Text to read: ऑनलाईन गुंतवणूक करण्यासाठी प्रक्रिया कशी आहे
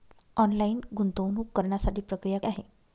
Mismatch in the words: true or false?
true